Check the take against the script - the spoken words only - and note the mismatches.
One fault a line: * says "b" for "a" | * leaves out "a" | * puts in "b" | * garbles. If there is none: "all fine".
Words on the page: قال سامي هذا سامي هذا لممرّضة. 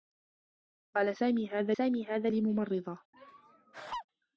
all fine